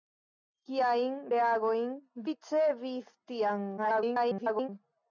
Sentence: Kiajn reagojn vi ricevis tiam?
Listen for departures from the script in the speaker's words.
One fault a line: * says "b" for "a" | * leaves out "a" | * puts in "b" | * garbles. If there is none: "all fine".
* leaves out "vi"
* garbles